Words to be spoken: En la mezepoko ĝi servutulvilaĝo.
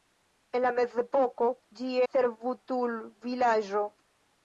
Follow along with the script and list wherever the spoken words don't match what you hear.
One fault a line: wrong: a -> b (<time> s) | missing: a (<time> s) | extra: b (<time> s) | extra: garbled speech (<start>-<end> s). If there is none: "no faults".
no faults